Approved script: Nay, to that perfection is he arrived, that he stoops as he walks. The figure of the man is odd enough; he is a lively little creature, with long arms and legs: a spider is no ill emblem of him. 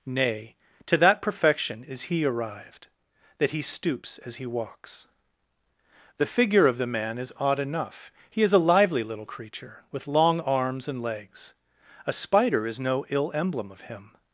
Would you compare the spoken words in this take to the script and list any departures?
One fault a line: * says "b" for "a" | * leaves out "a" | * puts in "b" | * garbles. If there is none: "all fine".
all fine